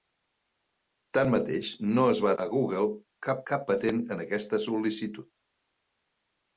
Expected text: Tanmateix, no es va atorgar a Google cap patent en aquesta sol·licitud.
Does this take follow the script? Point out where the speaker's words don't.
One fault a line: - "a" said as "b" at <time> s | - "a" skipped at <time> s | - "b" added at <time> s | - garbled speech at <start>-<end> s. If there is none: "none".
- "atorgar" skipped at 2.3 s
- "cap" added at 3.5 s